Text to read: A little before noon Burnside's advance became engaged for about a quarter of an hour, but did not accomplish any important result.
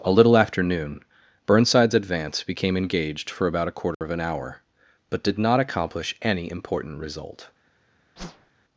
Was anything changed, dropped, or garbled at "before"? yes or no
yes